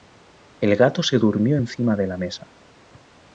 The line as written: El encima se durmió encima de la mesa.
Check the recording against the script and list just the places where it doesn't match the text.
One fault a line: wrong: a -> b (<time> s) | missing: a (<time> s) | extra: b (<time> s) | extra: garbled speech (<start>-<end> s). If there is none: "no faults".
wrong: encima -> gato (0.8 s)